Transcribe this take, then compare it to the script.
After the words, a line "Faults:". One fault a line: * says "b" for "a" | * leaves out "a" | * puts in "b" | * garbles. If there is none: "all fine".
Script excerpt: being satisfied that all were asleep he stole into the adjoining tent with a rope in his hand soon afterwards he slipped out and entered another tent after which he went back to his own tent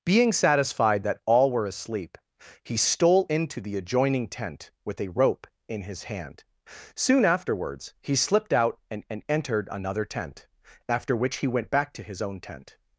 being satisfied that all were asleep he stole into the adjoining tent with a rope in his hand soon afterwards he slipped out and and entered another tent after which he went back to his own tent
Faults:
* puts in "and"